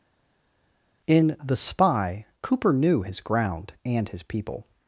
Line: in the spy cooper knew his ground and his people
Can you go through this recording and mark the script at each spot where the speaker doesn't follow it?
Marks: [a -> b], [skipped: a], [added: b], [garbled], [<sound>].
in the spy cooper knew his ground and his people